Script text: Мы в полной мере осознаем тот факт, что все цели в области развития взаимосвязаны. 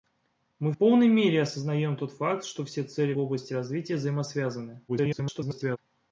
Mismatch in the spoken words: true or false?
true